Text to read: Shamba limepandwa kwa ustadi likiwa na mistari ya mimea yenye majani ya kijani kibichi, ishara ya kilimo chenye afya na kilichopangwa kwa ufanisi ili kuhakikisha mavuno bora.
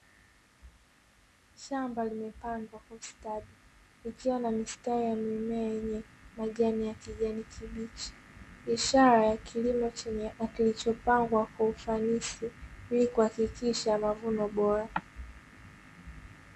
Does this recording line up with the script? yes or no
no